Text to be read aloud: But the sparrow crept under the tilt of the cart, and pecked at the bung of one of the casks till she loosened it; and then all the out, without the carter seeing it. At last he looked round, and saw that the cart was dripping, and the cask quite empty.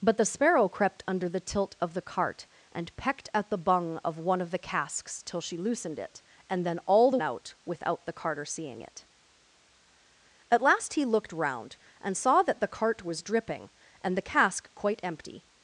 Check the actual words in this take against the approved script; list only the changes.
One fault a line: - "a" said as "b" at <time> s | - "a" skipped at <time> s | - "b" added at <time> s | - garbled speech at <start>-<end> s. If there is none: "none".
none